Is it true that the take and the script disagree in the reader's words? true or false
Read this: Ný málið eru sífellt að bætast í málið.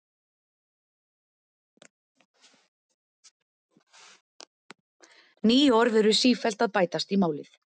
true